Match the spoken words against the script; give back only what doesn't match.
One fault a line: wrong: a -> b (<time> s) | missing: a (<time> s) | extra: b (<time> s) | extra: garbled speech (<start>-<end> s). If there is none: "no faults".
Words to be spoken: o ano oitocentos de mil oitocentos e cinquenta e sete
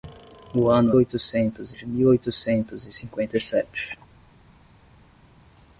no faults